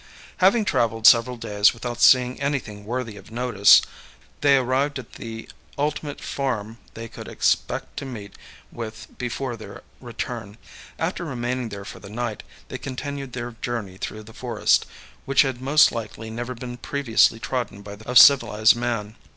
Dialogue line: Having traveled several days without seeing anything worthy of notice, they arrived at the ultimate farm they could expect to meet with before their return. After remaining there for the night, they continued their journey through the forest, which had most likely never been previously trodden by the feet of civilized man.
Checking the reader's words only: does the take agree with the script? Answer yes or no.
no